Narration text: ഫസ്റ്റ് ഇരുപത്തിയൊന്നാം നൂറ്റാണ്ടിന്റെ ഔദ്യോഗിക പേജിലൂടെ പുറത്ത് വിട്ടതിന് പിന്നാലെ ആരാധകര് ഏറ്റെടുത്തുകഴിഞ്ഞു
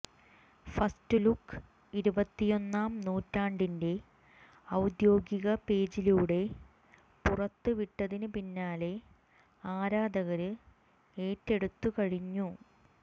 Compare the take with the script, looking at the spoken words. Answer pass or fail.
fail